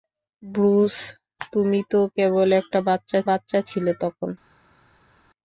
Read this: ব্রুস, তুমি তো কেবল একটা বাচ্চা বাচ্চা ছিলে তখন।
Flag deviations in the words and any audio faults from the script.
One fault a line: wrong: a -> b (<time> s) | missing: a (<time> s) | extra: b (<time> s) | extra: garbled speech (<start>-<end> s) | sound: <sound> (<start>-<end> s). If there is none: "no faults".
no faults